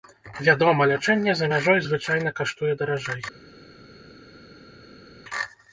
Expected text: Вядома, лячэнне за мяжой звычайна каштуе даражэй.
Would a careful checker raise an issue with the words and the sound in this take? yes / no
no